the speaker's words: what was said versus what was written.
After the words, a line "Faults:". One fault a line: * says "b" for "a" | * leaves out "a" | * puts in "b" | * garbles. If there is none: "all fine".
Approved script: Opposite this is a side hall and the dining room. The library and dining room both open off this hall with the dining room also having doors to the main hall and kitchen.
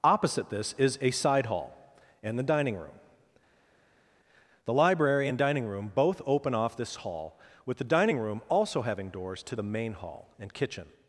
Opposite this is a side hall and the dining room. The library and dining room both open off this hall with the dining room also having doors to the main hall and kitchen.
Faults:
all fine